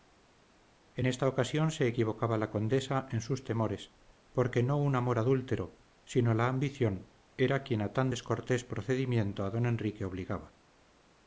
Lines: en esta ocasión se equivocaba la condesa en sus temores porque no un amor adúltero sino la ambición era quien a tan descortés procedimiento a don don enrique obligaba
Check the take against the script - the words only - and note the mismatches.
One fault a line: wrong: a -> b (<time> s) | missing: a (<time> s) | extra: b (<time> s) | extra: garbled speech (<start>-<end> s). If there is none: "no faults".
missing: don (9.6 s)